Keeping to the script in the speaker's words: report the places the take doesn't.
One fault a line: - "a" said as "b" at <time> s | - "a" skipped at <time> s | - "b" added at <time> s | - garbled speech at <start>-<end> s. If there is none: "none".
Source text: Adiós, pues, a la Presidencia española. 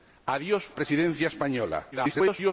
- "pues a la" skipped at 0.7 s
- garbled speech at 1.9-2.5 s